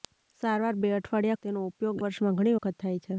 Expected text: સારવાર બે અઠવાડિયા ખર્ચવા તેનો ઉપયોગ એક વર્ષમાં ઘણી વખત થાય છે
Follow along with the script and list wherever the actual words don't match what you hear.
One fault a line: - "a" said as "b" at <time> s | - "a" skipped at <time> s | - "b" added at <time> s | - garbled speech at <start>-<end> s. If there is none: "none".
- "ખર્ચવા" skipped at 1.4 s
- "એક" skipped at 2.0 s